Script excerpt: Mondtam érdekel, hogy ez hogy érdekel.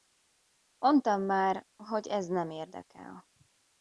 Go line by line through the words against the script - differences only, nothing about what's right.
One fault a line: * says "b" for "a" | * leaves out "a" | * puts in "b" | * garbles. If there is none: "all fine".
* says "már" for "érdekel"
* says "nem" for "hogy"